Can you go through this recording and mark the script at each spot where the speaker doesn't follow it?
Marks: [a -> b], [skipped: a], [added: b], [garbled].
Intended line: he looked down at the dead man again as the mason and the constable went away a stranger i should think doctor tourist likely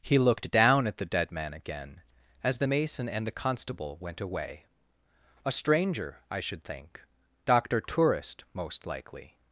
he looked down at the dead man again as the mason and the constable went away a stranger i should think doctor tourist [added: most] likely